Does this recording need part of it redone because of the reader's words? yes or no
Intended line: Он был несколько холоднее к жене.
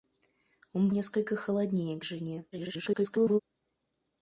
yes